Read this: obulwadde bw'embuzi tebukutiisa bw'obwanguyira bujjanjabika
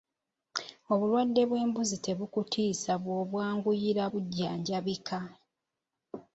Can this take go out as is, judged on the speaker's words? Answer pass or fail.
pass